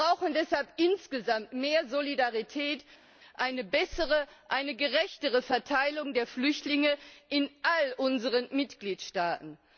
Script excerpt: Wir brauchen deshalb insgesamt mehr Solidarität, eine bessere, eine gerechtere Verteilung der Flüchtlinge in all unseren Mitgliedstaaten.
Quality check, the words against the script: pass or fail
pass